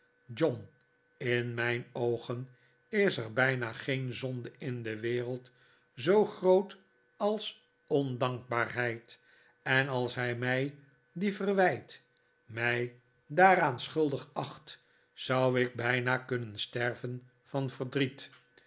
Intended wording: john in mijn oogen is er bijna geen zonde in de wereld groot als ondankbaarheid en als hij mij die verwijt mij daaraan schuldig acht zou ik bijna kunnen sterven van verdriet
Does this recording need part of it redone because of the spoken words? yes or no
yes